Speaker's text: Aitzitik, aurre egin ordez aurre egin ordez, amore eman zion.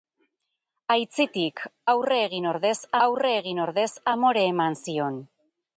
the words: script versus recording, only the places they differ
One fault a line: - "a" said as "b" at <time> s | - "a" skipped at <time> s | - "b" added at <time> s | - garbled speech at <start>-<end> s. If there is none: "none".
none